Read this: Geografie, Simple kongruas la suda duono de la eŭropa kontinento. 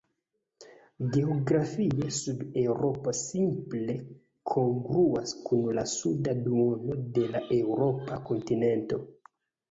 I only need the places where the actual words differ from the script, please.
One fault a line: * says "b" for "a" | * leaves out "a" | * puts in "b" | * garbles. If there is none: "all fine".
* puts in "Sud Eŭropo"
* puts in "kun"